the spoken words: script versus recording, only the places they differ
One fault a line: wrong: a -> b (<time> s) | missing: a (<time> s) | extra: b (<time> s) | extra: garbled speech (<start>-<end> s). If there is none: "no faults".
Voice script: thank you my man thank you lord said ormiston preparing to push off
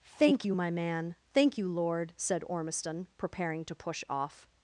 no faults